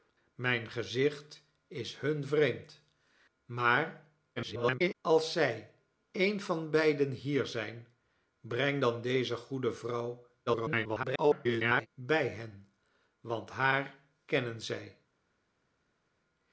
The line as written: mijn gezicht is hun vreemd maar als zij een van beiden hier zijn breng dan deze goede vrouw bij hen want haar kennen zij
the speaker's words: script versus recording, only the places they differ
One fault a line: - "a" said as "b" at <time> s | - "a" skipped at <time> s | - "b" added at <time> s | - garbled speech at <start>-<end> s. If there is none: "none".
- garbled speech at 4.4-4.9 s
- garbled speech at 10.5-11.9 s